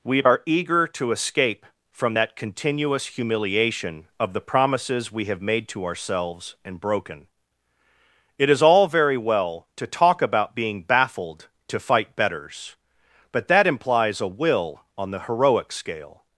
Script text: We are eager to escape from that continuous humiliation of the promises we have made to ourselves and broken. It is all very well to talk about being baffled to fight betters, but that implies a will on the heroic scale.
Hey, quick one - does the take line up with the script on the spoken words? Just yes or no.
yes